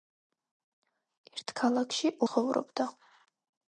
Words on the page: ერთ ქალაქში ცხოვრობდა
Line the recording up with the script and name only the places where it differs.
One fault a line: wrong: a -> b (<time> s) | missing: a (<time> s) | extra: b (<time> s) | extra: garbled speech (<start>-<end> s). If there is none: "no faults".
no faults